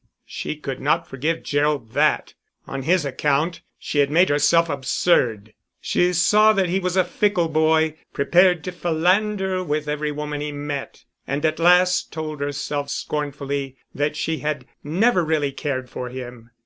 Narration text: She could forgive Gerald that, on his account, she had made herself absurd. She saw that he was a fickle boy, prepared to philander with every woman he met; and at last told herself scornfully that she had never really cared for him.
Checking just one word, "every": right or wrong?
right